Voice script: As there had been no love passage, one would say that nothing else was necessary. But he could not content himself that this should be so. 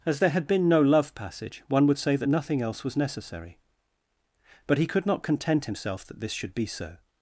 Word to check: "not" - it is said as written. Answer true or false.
true